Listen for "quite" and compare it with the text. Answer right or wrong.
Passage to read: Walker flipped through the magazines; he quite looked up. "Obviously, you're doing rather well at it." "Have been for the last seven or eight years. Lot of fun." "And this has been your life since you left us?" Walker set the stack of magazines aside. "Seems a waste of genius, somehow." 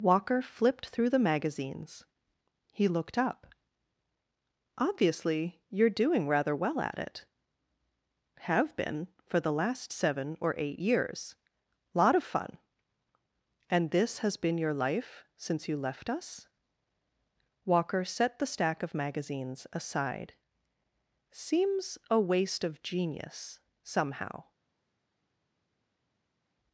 wrong